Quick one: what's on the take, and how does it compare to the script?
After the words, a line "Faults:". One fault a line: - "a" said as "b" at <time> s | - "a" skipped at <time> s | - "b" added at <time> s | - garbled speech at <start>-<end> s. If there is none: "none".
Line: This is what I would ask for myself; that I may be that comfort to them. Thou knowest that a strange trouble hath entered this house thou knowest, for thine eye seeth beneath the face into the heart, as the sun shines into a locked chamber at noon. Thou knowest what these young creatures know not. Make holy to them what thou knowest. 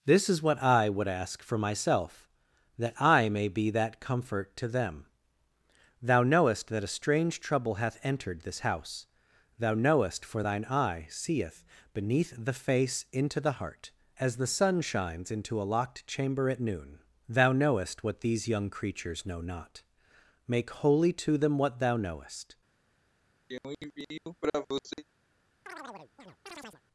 This is what I would ask for myself; that I may be that comfort to them. Thou knowest that a strange trouble hath entered this house thou knowest, for thine eye seeth beneath the face into the heart, as the sun shines into a locked chamber at noon. Thou knowest what these young creatures know not. Make holy to them what thou knowest.
Faults:
none